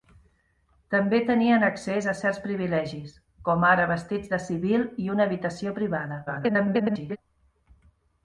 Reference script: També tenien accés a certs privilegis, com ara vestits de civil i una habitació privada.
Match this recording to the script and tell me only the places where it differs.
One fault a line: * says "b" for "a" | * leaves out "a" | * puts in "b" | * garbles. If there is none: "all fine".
* garbles